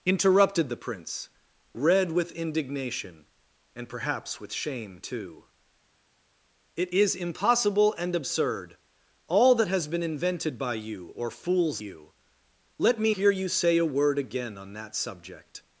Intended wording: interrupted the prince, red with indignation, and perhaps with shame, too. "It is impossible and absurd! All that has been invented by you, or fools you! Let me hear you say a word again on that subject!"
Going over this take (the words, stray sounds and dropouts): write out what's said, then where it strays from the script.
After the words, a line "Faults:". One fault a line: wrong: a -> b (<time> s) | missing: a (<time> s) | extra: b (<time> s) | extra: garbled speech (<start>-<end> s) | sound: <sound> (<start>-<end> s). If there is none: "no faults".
interrupted the prince, red with indignation, and perhaps with shame, too. "It is impossible and absurd! All that has been invented by you, or fools you! Let me hear you say a word again on that subject!"
Faults:
no faults